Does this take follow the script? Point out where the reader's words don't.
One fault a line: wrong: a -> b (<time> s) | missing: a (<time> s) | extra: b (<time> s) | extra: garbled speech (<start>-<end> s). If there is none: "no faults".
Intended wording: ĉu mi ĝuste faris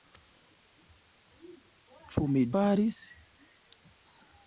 missing: ĝuste (2.4 s)